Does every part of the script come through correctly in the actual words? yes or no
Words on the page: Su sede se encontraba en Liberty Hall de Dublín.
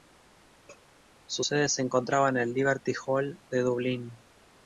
no